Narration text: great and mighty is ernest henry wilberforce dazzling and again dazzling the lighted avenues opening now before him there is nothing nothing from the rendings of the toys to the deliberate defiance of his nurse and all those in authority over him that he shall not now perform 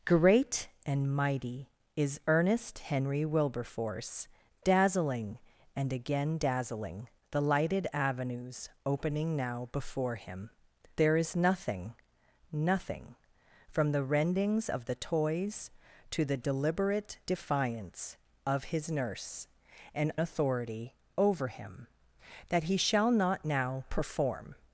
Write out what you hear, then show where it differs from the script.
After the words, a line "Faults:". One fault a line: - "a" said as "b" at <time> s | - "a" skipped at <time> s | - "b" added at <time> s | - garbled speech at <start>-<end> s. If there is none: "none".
great and mighty is ernest henry wilberforce dazzling and again dazzling the lighted avenues opening now before him there is nothing nothing from the rendings of the toys to the deliberate defiance of his nurse and authority over him that he shall not now perform
Faults:
- "all those in" skipped at 20.1 s